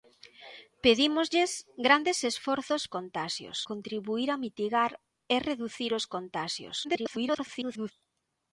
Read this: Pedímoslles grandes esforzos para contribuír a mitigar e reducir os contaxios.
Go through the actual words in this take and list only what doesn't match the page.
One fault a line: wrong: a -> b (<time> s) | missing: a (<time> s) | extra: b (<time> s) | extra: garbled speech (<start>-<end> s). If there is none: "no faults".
wrong: para -> contaxios (2.9 s)
extra: garbled speech (6.8-7.9 s)